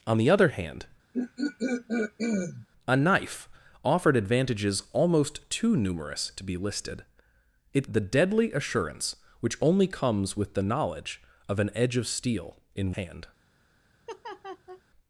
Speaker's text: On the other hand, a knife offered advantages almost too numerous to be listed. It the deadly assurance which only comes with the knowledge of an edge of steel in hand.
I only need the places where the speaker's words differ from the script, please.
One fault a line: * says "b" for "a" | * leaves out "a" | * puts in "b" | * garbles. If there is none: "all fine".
all fine